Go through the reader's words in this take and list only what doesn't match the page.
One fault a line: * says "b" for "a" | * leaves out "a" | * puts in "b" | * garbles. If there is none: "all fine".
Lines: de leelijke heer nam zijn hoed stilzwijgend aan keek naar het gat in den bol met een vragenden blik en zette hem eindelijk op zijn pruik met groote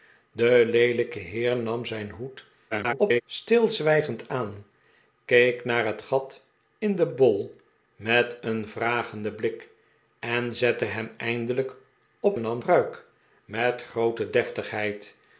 * garbles
* says "nam" for "zijn"